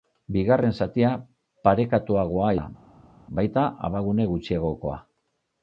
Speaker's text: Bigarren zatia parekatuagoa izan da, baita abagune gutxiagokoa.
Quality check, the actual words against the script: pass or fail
fail